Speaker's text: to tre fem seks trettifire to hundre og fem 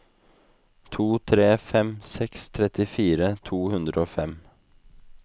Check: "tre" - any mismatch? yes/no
no